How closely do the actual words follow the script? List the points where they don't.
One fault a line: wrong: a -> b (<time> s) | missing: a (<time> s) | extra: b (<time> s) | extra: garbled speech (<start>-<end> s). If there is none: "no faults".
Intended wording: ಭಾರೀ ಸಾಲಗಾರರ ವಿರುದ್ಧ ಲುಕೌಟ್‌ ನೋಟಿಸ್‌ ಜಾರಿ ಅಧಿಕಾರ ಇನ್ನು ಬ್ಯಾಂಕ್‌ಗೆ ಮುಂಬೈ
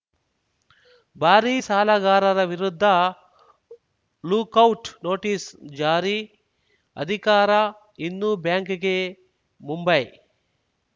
no faults